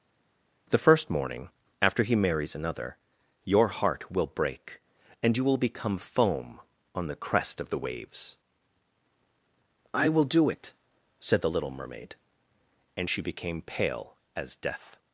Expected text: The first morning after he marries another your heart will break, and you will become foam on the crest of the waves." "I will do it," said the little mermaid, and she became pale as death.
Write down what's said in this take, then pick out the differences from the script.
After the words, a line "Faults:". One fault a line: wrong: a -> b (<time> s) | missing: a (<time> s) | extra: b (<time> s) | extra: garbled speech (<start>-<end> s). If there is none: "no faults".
The first morning after he marries another your heart will break, and you will become foam on the crest of the waves." "I will do it," said the little mermaid, and she became pale as death.
Faults:
no faults